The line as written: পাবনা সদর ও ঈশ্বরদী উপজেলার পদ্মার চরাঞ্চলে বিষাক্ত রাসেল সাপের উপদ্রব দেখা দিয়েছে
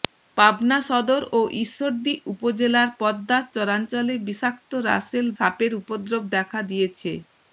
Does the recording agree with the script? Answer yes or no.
yes